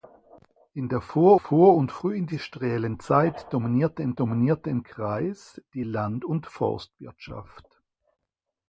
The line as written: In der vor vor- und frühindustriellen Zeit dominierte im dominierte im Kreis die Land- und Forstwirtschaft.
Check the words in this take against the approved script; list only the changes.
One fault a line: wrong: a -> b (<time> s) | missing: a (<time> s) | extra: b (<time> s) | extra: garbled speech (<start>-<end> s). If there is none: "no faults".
no faults